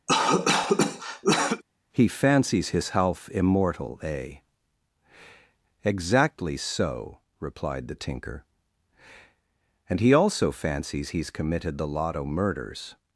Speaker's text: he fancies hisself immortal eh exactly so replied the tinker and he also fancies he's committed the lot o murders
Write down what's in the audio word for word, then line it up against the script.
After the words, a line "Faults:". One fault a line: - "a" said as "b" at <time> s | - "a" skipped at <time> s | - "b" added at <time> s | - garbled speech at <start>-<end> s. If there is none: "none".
he fancies hisself immortal eh exactly so replied the tinker and he also fancies he's committed the lot o murders
Faults:
none